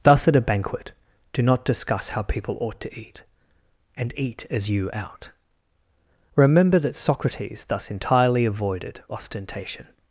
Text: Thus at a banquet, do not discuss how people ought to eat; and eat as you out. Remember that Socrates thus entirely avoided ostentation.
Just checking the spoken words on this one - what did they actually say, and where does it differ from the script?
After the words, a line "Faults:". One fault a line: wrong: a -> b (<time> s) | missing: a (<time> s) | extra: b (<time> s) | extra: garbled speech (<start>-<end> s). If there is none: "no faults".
Thus at a banquet, do not discuss how people ought to eat; and eat as you out. Remember that Socrates thus entirely avoided ostentation.
Faults:
no faults